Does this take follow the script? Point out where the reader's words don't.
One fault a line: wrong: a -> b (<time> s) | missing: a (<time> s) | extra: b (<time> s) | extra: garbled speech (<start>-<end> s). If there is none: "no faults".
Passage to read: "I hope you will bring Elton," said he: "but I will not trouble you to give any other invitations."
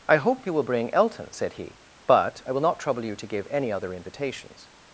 no faults